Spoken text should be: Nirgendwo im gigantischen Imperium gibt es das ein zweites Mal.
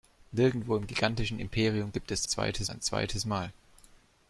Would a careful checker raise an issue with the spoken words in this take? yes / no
yes